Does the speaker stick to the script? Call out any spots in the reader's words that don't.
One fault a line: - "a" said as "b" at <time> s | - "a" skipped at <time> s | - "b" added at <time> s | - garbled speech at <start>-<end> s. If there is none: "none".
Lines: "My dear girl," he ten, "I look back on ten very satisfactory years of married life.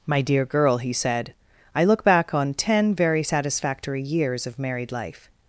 - "ten" said as "said" at 0.9 s